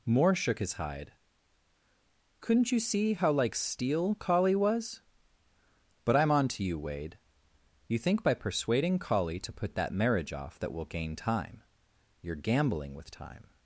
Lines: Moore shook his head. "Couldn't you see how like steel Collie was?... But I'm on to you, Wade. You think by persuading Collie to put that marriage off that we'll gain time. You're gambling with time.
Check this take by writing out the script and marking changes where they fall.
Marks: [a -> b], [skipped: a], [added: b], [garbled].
Moore shook his [head. -> hide] "Couldn't you see how like steel Collie was?... But I'm on to you, Wade. You think by persuading Collie to put that marriage off that we'll gain time. You're gambling with time.